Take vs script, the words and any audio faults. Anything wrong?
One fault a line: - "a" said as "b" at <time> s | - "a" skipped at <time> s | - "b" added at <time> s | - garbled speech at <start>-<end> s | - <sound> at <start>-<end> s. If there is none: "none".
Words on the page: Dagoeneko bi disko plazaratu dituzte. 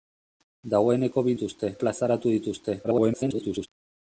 - "disko" said as "dituzte" at 1.3 s
- garbled speech at 2.8-3.7 s